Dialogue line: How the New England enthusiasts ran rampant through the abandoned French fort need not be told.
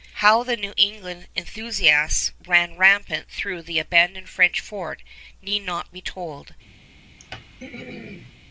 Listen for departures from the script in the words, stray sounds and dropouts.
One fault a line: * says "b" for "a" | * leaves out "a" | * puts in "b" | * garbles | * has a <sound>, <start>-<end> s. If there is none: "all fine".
* has a throat clearing, 7.2-8.3 s